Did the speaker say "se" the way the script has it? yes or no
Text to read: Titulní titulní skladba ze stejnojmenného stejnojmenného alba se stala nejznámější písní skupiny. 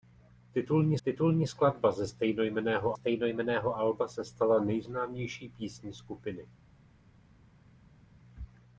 yes